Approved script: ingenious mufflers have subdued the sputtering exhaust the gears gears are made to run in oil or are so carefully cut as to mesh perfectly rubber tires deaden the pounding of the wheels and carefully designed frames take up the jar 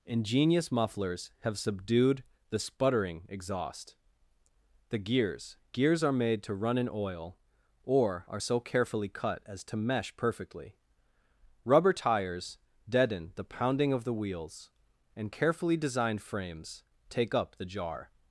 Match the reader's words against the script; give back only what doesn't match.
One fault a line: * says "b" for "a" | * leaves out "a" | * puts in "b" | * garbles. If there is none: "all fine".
all fine